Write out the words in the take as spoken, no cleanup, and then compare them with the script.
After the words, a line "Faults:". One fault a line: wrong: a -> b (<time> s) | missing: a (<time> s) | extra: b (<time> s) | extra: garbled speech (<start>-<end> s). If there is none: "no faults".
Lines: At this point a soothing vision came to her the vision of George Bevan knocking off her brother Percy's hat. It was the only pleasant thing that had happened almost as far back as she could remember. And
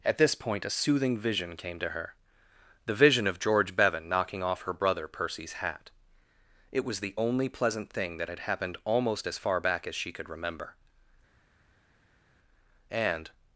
At this point a soothing vision came to her the vision of George Bevan knocking off her brother Percy's hat. It was the only pleasant thing that had happened almost as far back as she could remember. And
Faults:
no faults